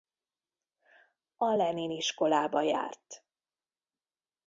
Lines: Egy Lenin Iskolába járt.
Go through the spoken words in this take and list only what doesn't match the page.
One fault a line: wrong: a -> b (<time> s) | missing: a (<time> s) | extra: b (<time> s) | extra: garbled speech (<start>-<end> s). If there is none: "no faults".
wrong: Egy -> A (1.4 s)